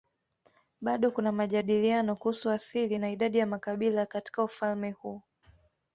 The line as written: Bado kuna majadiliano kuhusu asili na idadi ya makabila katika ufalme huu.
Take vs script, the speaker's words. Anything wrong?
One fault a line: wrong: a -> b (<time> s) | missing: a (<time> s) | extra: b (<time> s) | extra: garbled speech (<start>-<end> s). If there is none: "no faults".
no faults